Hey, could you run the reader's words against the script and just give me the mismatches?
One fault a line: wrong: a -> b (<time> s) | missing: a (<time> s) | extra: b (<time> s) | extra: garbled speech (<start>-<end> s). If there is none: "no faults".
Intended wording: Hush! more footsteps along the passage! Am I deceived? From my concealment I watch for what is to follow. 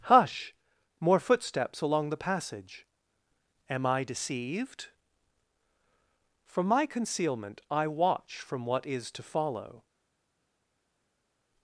wrong: for -> from (8.4 s)